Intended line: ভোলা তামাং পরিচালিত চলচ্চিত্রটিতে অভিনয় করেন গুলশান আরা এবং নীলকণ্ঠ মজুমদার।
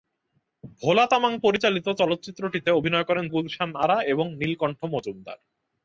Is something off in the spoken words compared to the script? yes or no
no